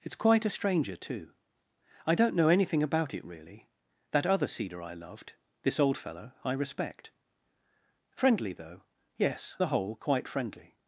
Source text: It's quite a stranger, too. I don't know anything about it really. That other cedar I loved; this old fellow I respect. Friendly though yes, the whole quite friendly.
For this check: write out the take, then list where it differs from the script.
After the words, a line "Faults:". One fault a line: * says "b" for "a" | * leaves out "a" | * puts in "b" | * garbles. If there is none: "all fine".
It's quite a stranger, too. I don't know anything about it really. That other cedar I loved; this old fellow I respect. Friendly though yes, the whole quite friendly.
Faults:
all fine